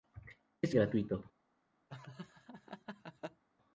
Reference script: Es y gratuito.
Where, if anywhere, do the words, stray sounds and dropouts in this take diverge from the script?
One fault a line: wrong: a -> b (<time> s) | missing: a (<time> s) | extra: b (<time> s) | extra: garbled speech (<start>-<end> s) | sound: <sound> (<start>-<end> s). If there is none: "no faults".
sound: laugh (1.9-3.4 s)